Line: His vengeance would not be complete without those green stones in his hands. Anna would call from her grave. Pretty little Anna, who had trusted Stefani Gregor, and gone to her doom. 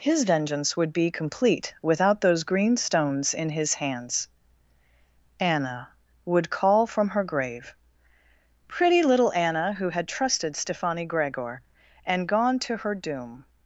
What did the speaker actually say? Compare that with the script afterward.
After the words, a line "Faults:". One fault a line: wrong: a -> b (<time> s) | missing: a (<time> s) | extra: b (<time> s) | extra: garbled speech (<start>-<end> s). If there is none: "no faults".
His vengeance would be complete without those green stones in his hands. Anna would call from her grave. Pretty little Anna, who had trusted Stefani Gregor, and gone to her doom.
Faults:
missing: not (0.9 s)